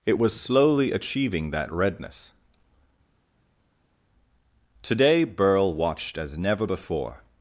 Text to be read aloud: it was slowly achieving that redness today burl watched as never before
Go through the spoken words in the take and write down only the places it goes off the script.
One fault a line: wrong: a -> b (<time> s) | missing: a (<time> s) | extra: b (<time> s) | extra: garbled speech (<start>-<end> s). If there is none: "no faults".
no faults